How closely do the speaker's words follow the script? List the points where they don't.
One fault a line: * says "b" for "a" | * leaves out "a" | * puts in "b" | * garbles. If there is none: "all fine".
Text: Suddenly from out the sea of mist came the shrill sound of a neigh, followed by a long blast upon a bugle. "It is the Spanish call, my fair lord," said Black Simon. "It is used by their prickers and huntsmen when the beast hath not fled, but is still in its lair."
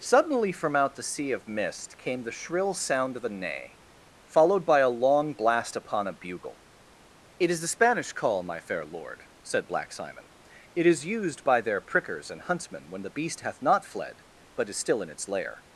all fine